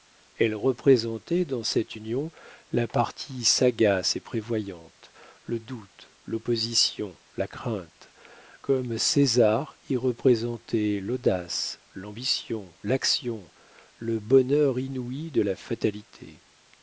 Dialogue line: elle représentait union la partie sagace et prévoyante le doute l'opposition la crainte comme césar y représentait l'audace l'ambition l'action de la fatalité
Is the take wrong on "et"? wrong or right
right